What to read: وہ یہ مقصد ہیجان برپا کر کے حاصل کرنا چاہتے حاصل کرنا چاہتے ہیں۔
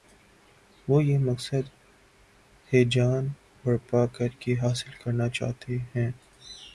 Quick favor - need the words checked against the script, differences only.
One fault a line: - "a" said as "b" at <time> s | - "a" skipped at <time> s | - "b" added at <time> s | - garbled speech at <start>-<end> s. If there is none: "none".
- "حاصل کرنا چاہتے" skipped at 5.8 s